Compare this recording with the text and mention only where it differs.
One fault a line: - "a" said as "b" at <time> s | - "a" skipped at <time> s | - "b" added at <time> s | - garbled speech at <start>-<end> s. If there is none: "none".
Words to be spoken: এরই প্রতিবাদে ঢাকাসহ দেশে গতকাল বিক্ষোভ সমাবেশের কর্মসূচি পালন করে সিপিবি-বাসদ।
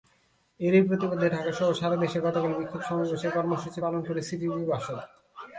- "সারা" added at 1.7 s